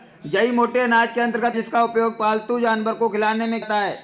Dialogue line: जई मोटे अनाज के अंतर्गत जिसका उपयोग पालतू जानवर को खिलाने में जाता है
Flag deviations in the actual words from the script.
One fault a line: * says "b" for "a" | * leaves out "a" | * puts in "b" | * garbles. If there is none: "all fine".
all fine